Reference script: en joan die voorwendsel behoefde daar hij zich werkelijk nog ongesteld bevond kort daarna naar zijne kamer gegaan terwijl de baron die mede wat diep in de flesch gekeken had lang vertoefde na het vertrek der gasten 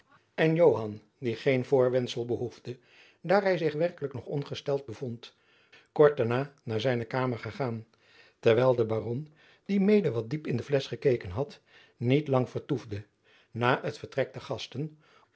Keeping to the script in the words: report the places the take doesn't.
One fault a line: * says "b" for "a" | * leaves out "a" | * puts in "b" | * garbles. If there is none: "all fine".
* puts in "geen"
* puts in "niet"